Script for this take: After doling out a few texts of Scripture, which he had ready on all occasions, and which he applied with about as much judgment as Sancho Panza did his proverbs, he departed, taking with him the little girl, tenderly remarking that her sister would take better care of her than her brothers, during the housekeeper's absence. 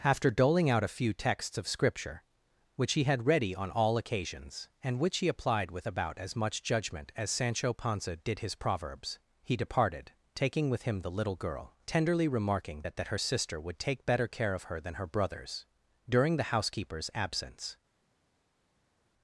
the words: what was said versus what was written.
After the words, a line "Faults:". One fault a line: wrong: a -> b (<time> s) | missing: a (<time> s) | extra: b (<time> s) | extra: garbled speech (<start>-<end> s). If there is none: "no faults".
After doling out a few texts of Scripture, which he had ready on all occasions, and which he applied with about as much judgment as Sancho Panza did his proverbs, he departed, taking with him the little girl, tenderly remarking that that her sister would take better care of her than her brothers, during the housekeeper's absence.
Faults:
extra: that (13.0 s)